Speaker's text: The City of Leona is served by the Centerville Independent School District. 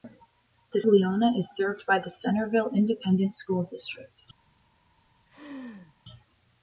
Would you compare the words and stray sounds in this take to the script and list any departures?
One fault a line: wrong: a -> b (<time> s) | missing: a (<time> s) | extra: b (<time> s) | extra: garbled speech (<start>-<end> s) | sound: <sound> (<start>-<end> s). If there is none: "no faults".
missing: City of (0.8 s)
sound: laugh (5.3-5.9 s)